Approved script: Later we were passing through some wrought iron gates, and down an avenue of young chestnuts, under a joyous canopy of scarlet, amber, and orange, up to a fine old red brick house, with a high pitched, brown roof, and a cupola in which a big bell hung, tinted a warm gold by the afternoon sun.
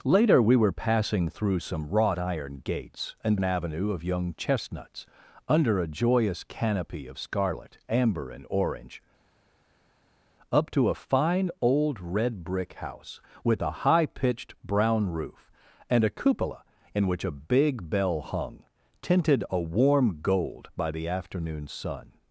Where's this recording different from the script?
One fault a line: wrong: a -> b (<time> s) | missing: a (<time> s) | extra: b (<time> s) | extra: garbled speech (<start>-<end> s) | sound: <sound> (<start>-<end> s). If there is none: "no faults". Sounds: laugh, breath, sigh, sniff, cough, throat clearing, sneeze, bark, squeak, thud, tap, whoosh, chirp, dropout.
missing: down (3.4 s)